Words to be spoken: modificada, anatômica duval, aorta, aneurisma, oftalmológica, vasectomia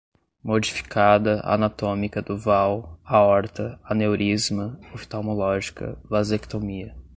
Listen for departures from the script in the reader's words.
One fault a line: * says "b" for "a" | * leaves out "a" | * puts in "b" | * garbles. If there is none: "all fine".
all fine